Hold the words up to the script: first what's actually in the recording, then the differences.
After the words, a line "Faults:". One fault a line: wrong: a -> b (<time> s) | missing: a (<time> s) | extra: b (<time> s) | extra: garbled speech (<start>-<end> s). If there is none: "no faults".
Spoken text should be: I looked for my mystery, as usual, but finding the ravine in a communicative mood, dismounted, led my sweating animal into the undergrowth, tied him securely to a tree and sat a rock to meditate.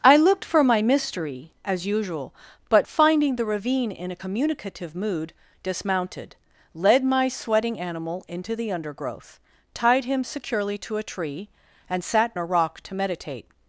I looked for my mystery, as usual, but finding the ravine in a communicative mood, dismounted, led my sweating animal into the undergrowth, tied him securely to a tree and sat a rock to meditate.
Faults:
no faults